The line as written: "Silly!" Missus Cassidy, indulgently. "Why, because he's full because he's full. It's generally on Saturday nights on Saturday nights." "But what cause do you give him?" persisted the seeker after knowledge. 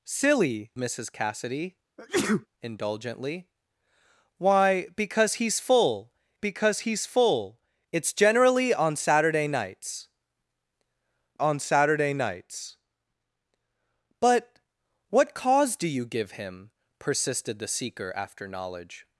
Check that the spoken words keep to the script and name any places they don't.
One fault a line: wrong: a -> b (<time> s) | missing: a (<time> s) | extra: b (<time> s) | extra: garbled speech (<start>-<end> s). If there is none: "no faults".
no faults